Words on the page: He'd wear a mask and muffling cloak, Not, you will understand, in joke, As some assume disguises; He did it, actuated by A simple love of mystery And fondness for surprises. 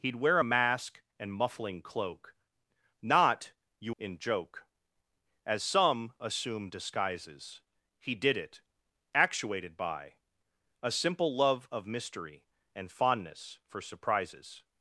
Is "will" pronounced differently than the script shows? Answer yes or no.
yes